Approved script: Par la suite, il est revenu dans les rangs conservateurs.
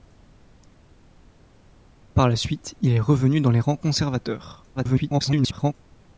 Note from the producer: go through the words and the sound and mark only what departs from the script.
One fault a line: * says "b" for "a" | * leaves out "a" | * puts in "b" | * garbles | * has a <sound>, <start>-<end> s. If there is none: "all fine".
* garbles